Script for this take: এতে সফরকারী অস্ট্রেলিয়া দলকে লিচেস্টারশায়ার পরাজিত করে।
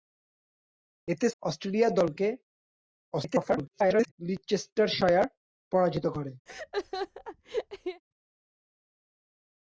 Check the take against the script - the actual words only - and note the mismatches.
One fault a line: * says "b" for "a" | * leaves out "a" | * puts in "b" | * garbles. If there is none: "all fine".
* leaves out "সফরকারী"
* garbles